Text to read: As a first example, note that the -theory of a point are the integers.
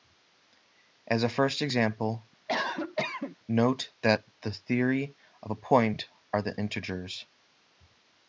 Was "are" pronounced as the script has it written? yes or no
yes